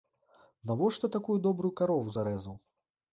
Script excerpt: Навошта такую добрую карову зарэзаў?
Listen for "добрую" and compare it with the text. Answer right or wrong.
right